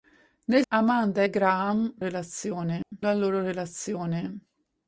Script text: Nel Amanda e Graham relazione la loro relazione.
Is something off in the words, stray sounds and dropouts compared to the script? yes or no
yes